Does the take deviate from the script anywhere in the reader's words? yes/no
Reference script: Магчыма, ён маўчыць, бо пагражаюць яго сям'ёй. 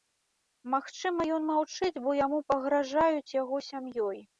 yes